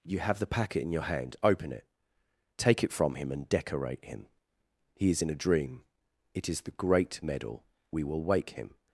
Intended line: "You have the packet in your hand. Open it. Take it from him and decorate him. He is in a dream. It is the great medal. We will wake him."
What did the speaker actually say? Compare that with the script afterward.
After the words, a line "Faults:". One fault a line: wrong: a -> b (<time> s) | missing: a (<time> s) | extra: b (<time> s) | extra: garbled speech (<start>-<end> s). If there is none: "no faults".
"You have the packet in your hand. Open it. Take it from him and decorate him. He is in a dream. It is the great medal. We will wake him."
Faults:
no faults